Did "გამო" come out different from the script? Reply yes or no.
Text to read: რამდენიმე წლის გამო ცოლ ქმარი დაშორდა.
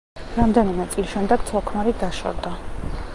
yes